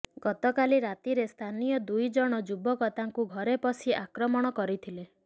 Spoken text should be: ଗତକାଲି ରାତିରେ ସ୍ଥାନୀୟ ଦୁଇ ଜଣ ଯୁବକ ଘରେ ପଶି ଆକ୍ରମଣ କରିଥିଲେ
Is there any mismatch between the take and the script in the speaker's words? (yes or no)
yes